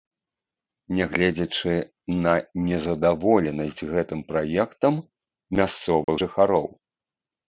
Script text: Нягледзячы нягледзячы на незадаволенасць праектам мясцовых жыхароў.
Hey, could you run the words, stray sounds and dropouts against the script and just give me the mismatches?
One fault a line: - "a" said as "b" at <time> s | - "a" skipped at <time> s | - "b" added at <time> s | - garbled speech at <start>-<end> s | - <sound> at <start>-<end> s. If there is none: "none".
- "нягледзячы" skipped at 1.7 s
- "гэтым" added at 3.9 s
- dropout at 6.0-6.1 s